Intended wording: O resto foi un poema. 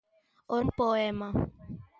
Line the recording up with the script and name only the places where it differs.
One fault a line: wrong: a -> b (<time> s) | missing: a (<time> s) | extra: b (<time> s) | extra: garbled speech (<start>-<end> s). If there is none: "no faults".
missing: resto foi (0.6 s)